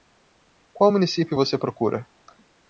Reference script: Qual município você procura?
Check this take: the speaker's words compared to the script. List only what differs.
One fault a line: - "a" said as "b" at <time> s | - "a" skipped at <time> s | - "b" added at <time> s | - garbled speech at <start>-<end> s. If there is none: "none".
none